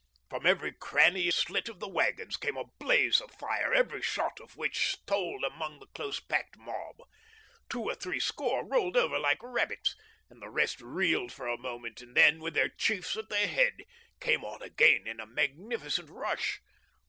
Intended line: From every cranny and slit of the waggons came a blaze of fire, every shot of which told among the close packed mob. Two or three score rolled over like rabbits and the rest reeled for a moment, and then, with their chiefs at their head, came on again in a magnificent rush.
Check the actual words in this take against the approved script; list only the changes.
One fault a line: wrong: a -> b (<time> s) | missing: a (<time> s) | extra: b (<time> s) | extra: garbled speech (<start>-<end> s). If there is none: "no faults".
missing: and (1.3 s)